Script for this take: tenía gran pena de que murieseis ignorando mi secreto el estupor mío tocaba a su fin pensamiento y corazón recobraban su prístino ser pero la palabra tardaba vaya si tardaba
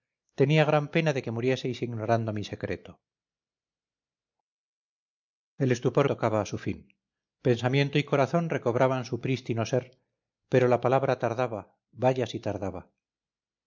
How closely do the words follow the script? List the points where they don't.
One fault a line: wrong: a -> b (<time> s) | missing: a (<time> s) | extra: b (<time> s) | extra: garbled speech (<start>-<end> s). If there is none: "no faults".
missing: mío (6.1 s)